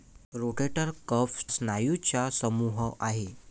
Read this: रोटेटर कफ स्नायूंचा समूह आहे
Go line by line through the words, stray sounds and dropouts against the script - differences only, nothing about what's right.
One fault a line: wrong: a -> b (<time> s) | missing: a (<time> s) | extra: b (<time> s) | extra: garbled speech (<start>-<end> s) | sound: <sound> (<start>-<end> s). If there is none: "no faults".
no faults